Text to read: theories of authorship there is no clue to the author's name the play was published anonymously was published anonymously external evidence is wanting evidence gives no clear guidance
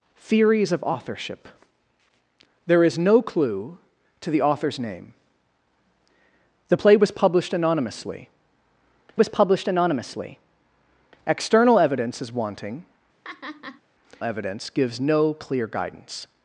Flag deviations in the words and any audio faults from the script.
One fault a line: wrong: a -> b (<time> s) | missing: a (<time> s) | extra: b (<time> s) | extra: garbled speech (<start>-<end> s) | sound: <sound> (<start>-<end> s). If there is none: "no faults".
sound: laugh (13.2-13.8 s)